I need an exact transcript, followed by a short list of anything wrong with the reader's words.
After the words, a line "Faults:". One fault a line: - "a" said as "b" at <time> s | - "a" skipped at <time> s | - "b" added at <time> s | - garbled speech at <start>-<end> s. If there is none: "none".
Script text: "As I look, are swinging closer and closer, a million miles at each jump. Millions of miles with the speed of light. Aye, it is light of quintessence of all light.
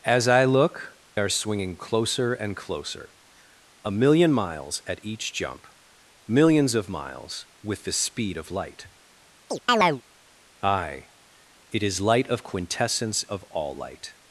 "As I look, are swinging closer and closer, a million miles at each jump. Millions of miles with the speed of light. Aye, it is light of quintessence of all light.
Faults:
none